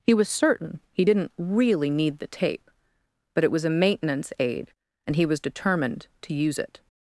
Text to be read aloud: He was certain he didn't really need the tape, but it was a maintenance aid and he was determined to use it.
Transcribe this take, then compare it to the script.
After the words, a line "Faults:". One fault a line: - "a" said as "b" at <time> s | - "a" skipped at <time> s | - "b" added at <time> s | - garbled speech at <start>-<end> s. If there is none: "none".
He was certain he didn't really need the tape, but it was a maintenance aid and he was determined to use it.
Faults:
none